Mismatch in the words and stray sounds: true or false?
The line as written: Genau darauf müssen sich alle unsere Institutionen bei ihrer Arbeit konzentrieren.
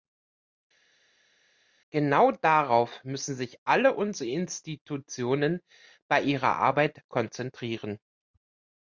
false